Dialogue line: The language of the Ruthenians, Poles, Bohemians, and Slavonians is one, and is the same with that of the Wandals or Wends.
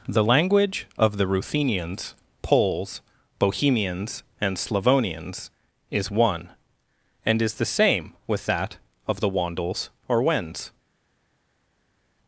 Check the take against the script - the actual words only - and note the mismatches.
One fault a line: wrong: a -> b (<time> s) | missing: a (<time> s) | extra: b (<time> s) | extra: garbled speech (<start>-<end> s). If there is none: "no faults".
no faults